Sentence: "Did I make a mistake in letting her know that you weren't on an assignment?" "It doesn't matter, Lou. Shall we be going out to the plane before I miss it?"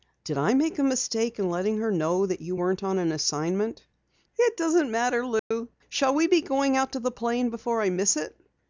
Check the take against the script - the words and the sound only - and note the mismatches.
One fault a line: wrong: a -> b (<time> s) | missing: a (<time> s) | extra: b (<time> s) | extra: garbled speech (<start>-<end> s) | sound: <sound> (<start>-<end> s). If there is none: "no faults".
sound: dropout (5.4-5.5 s)